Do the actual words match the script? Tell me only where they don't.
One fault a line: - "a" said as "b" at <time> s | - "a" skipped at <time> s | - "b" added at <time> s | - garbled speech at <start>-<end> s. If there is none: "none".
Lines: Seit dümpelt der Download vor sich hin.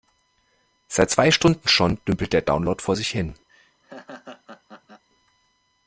- "zwei Stunden schon" added at 1.1 s